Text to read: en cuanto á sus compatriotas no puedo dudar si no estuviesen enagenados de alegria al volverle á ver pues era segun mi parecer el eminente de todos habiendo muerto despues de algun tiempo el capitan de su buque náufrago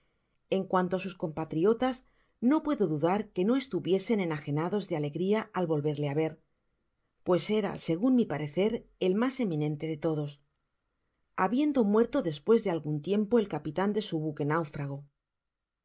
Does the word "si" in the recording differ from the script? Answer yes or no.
yes